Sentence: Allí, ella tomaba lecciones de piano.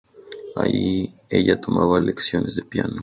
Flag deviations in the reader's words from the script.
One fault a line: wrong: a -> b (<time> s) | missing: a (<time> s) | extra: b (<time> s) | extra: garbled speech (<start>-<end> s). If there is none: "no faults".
no faults